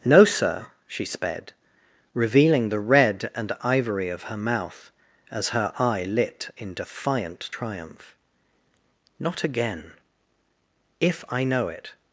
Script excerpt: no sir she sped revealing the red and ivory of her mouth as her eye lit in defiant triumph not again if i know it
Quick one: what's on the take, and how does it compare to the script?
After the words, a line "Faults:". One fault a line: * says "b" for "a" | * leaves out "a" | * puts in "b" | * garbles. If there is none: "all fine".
no sir she sped revealing the red and ivory of her mouth as her eye lit in defiant triumph not again if i know it
Faults:
all fine